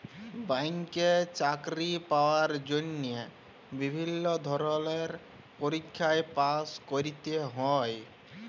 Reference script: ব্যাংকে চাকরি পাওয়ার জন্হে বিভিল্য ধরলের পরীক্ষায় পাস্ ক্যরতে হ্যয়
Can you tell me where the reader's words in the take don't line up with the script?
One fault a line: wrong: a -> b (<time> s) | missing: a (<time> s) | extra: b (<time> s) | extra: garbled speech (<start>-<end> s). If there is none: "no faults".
no faults